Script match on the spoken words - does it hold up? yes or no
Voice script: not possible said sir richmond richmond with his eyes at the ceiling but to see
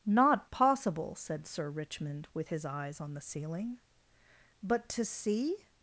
no